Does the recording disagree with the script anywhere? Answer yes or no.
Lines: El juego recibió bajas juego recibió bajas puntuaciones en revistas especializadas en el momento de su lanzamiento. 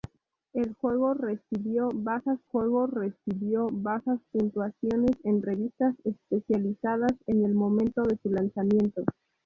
no